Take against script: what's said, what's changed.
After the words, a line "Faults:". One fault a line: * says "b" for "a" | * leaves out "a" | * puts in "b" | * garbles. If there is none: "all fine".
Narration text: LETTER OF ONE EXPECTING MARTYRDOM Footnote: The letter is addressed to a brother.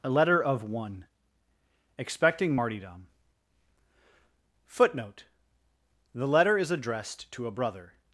a LETTER OF ONE EXPECTING MARTYRDOM Footnote: The letter is addressed to a brother.
Faults:
* puts in "a"